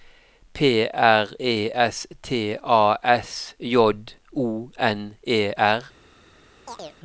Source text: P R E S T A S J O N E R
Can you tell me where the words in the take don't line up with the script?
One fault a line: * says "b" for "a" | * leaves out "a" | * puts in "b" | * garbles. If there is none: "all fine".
all fine